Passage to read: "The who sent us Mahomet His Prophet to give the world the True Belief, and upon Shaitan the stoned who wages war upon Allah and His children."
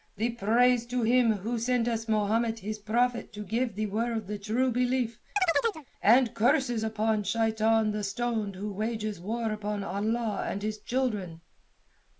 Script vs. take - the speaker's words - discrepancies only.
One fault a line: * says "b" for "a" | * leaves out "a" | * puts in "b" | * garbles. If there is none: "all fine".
* puts in "praise to Him"
* puts in "curses"